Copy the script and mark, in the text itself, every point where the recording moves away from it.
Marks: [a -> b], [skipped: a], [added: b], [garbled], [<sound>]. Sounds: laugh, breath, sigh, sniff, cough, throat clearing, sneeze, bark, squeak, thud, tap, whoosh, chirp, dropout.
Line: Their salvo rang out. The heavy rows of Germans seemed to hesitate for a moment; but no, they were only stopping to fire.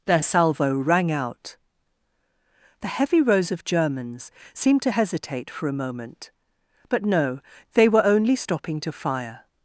Their salvo rang out. The heavy rows of Germans seemed to hesitate for a moment; but no, they were only stopping to fire.